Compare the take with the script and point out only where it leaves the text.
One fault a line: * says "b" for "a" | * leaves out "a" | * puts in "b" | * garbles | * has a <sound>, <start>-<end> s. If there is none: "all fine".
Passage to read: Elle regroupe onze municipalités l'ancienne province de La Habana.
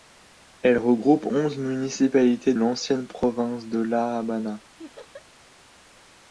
* has a laugh, 4.8-5.3 s